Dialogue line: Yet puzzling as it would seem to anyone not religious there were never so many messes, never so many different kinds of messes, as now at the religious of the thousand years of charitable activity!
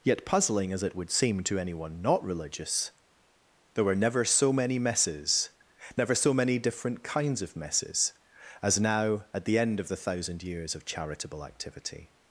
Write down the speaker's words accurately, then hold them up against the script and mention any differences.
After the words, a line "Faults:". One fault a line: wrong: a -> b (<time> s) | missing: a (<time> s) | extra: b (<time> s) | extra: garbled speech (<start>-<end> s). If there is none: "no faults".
Yet puzzling as it would seem to anyone not religious there were never so many messes, never so many different kinds of messes, as now at the end of the thousand years of charitable activity!
Faults:
wrong: religious -> end (9.6 s)